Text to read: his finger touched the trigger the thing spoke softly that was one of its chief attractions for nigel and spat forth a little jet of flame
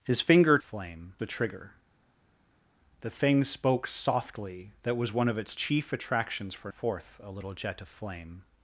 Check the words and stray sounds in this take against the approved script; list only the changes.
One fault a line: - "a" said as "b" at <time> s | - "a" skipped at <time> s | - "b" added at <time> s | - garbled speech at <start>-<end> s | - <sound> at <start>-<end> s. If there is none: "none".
- "touched" said as "flame" at 0.6 s
- "nigel and spat" skipped at 6.7 s